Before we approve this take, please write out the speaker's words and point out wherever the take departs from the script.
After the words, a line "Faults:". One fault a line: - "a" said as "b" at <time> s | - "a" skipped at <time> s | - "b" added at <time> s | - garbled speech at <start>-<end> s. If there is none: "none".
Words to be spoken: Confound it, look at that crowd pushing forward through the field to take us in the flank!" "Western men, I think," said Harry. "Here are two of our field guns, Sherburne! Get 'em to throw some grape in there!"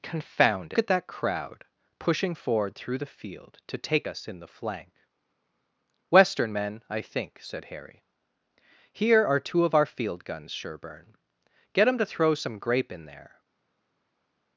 Confound at that crowd pushing forward through the field to take us in the flank!" "Western men, I think," said Harry. "Here are two of our field guns, Sherburne! Get 'em to throw some grape in there!"
Faults:
- "it look" skipped at 0.7 s